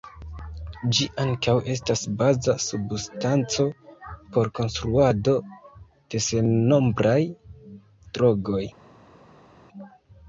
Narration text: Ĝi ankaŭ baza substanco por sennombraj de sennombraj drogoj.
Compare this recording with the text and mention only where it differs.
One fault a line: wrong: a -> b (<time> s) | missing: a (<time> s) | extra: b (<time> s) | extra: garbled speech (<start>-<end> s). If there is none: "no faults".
extra: estas (1.7 s)
wrong: sennombraj -> konstruado (4.6 s)